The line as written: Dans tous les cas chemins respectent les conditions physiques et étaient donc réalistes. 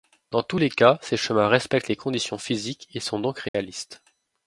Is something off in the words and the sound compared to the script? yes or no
yes